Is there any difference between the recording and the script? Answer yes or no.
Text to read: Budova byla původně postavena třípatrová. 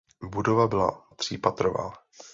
yes